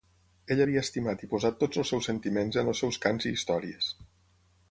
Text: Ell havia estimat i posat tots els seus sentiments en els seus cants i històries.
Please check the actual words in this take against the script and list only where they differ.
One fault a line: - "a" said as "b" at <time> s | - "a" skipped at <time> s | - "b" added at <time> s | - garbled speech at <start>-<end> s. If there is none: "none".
none